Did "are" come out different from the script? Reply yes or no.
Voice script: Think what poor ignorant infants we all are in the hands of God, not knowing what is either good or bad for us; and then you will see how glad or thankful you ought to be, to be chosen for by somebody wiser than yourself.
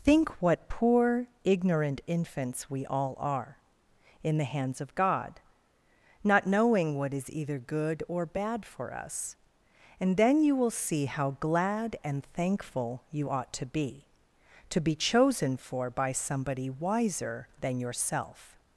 no